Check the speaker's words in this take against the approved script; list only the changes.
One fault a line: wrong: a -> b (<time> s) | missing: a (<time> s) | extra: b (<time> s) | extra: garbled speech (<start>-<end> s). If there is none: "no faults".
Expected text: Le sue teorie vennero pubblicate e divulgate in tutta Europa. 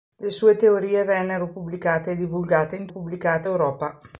wrong: tutta -> pubblicate (2.9 s)